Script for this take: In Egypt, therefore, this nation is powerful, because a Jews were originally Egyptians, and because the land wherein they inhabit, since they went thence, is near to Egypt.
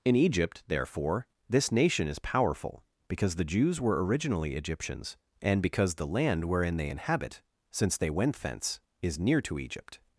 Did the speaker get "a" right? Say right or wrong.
wrong